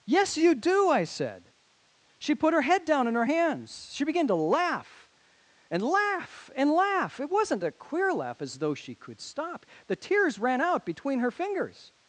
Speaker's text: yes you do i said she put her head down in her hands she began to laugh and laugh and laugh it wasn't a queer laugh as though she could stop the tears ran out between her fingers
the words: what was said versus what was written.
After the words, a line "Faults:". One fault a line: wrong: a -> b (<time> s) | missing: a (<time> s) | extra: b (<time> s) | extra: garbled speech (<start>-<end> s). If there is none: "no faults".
yes you do i said she put her head down in her hands she began to laugh and laugh and laugh it wasn't a queer laugh as though she could stop the tears ran out between her fingers
Faults:
no faults